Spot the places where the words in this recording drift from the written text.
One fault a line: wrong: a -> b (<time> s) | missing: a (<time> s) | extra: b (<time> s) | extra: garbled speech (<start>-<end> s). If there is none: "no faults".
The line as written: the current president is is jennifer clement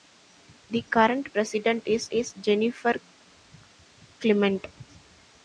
no faults